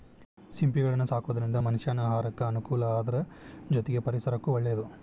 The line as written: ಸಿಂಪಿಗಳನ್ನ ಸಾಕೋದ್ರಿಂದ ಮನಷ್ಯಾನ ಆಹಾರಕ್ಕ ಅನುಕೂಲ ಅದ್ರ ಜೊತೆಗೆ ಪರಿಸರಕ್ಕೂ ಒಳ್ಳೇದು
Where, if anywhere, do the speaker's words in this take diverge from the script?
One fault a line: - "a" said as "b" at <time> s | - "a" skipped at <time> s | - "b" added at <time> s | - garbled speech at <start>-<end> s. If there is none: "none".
none